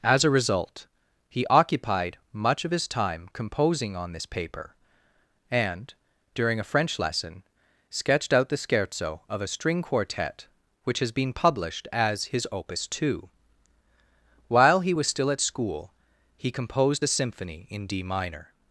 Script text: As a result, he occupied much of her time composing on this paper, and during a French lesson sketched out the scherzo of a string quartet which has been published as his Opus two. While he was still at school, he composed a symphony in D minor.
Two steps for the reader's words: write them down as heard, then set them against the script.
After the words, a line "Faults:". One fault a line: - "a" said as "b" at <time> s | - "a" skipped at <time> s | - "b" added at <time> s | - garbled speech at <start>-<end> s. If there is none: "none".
As a result, he occupied much of his time composing on this paper, and during a French lesson sketched out the scherzo of a string quartet which has been published as his Opus two. While he was still at school, he composed a symphony in D minor.
Faults:
- "her" said as "his" at 2.7 s